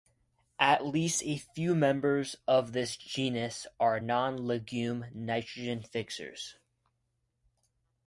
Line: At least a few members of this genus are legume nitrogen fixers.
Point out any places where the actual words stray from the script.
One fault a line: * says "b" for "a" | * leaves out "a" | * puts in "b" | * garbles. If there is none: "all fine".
* puts in "non"